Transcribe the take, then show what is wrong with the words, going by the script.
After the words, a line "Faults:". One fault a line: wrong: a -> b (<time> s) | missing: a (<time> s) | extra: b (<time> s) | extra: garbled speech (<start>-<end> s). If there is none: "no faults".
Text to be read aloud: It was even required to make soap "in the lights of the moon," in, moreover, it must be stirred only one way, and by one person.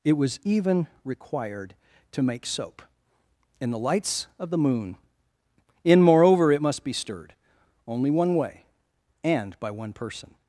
It was even required to make soap "in the lights of the moon," in, moreover, it must be stirred only one way, and by one person.
Faults:
no faults